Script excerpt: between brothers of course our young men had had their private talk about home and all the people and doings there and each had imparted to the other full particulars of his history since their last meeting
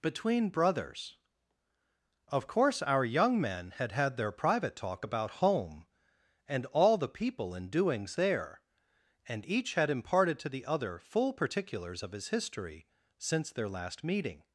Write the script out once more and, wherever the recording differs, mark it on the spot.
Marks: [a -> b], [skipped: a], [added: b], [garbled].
between brothers of course our young men had had their private talk about home and all the people and doings there and each had imparted to the other full particulars of his history since their last meeting